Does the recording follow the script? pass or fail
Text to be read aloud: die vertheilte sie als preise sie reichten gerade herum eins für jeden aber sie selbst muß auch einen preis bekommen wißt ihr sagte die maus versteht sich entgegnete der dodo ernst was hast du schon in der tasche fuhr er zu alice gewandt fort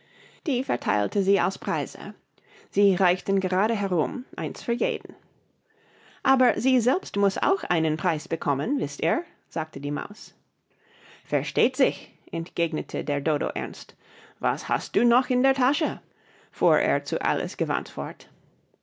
fail